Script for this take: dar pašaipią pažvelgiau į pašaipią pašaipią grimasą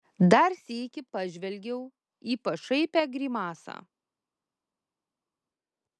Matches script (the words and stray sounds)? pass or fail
fail